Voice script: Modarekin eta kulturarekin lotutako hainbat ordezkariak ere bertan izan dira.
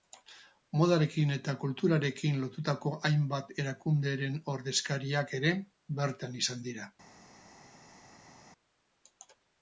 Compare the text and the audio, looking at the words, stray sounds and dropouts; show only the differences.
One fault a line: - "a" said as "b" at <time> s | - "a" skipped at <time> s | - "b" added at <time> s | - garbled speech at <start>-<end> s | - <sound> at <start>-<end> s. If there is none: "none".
- "erakunderen" added at 3.7 s